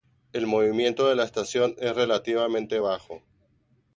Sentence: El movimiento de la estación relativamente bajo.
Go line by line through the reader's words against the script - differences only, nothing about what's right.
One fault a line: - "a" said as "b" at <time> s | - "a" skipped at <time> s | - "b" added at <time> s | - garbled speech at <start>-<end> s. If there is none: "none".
- "es" added at 1.8 s